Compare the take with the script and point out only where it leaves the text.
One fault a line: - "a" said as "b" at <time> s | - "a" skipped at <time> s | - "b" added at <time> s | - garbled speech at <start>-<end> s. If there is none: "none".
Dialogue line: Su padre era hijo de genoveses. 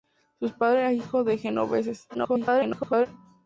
- garbled speech at 2.1-3.1 s